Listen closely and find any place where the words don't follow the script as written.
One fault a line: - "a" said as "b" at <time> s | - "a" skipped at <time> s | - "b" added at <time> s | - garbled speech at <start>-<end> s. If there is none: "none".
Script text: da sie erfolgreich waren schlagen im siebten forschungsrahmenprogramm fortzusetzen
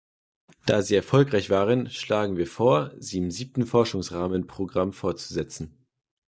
- "wir vor sie" added at 2.4 s